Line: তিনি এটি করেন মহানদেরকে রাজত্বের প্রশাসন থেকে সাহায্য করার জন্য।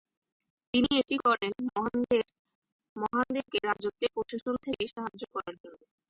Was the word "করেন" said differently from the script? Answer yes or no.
no